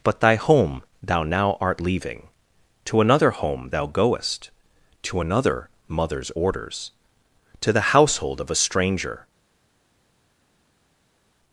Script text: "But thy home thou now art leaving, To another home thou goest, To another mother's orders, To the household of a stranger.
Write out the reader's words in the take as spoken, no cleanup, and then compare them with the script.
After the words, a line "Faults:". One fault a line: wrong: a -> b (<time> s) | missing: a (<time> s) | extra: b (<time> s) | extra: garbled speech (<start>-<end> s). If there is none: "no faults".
"But thy home thou now art leaving, To another home thou goest, To another mother's orders, To the household of a stranger.
Faults:
no faults